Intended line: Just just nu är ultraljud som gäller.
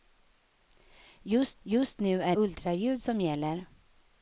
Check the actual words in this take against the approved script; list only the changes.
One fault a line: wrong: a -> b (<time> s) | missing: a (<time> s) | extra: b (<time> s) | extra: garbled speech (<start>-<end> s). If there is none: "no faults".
no faults